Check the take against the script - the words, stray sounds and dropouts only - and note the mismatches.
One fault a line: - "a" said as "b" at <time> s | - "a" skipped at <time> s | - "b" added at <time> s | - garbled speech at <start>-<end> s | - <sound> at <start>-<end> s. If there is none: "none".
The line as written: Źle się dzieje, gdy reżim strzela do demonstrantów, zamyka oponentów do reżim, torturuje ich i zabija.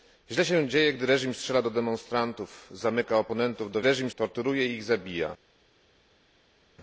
none